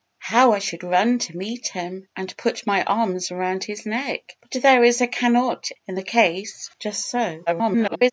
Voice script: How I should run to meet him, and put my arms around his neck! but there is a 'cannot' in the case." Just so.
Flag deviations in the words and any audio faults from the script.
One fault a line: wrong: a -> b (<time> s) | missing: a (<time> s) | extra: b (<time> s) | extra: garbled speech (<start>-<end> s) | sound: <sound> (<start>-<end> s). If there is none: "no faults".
extra: garbled speech (7.5-8.1 s)